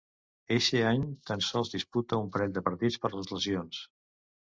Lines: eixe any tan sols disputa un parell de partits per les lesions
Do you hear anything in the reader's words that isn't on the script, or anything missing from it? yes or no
no